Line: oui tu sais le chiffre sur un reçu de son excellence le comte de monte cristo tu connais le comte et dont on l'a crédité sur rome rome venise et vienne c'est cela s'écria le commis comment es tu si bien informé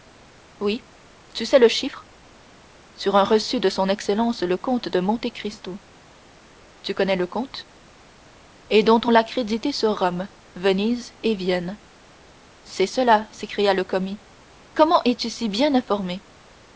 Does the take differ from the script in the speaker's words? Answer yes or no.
yes